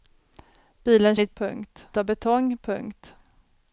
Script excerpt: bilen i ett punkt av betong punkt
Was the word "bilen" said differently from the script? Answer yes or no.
no